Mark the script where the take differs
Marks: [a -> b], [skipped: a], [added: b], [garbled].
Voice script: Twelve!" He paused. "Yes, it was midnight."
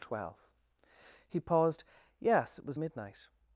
Twelve!" He paused. "Yes, it was midnight."